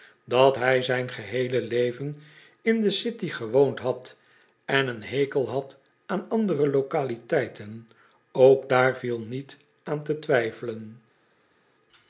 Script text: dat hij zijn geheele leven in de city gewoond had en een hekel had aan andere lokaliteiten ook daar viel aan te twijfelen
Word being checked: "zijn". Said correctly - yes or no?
yes